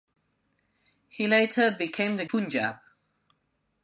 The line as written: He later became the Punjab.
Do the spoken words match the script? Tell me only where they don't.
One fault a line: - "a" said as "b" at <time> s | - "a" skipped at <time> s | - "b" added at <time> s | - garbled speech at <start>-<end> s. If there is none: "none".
none